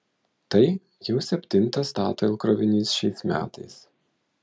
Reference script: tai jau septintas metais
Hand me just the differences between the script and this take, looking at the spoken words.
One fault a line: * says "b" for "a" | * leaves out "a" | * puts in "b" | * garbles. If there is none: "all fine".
* puts in "statoil krovinys šiais"